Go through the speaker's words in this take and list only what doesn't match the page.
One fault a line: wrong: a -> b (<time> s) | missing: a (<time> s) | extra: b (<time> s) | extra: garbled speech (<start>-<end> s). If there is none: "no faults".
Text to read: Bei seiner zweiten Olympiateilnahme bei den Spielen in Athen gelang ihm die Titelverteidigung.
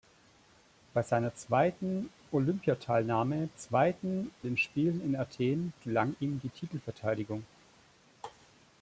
wrong: bei -> zweiten (3.6 s)